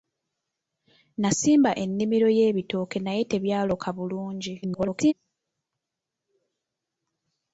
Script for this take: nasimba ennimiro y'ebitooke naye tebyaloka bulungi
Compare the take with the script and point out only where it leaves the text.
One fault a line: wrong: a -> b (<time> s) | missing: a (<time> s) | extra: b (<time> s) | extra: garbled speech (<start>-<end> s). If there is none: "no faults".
extra: garbled speech (4.6-5.1 s)